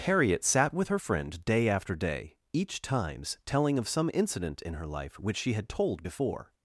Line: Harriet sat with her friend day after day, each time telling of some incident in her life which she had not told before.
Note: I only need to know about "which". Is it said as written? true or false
true